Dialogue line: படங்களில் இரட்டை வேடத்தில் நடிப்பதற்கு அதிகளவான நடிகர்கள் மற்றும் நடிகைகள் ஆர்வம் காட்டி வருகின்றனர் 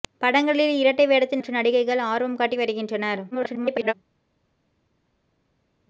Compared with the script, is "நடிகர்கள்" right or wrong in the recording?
wrong